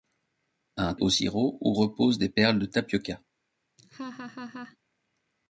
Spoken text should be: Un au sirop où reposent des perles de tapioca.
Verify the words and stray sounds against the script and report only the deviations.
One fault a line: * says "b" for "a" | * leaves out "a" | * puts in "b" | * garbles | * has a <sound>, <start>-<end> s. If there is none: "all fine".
* has a laugh, 3.8-4.8 s